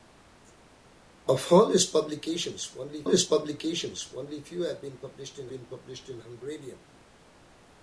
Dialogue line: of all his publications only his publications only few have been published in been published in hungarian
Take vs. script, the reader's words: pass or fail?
pass